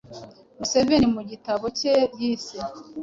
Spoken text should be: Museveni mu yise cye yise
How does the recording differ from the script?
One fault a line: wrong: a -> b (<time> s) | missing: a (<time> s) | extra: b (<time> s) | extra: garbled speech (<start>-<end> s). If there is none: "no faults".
wrong: yise -> gitabo (1.3 s)